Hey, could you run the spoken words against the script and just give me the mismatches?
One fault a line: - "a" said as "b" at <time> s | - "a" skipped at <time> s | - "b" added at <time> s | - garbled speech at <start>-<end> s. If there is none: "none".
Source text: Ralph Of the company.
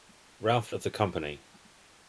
none